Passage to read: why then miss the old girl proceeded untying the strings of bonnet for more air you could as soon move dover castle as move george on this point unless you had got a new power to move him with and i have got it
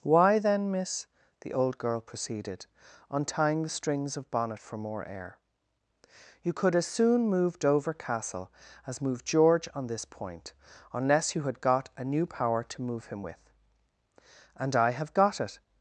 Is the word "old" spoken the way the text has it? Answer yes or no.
yes